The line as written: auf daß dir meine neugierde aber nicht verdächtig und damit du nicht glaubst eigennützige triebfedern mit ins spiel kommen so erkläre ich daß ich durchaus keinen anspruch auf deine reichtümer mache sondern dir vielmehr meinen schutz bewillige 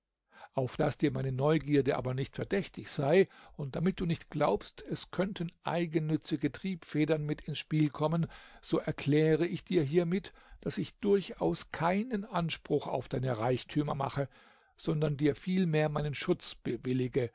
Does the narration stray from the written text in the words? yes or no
yes